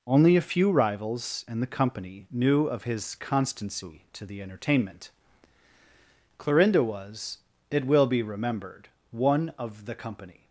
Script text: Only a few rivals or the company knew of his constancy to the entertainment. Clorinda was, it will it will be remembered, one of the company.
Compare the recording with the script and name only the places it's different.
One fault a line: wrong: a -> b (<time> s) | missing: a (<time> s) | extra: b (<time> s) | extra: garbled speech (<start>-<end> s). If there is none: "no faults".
wrong: or -> and (1.5 s)
missing: it will (8.1 s)